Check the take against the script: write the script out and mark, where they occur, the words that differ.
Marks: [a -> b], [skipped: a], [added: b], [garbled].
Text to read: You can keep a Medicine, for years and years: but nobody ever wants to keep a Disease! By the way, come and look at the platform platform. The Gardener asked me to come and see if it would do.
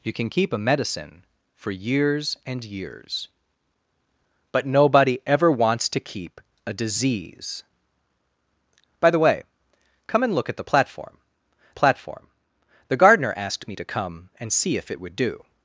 You can keep a Medicine, for years and years: but nobody ever wants to keep a Disease! By the way, come and look at the platform platform. The Gardener asked me to come and see if it would do.